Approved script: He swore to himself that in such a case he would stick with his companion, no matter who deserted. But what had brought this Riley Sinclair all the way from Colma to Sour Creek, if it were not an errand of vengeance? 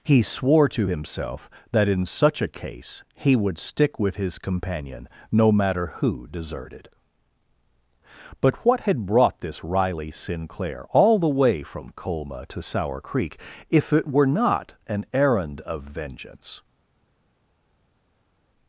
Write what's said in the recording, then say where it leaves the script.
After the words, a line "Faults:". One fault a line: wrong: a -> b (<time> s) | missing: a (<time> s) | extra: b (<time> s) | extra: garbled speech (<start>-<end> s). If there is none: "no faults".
He swore to himself that in such a case he would stick with his companion, no matter who deserted. But what had brought this Riley Sinclair all the way from Colma to Sour Creek, if it were not an errand of vengeance?
Faults:
no faults